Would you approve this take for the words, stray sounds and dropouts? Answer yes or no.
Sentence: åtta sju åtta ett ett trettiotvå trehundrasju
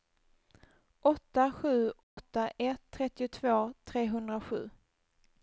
no